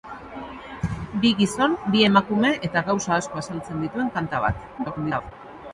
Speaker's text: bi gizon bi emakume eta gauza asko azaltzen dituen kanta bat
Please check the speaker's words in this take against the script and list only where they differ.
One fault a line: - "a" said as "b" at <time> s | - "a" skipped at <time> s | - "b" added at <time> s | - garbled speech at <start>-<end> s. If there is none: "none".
- garbled speech at 4.8-5.3 s